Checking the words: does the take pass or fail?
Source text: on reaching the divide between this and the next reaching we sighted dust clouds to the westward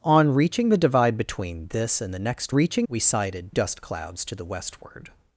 pass